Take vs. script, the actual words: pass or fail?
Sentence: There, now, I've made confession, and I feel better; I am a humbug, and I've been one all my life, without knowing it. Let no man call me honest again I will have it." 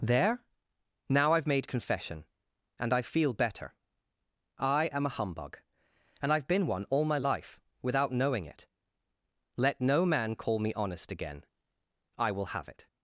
pass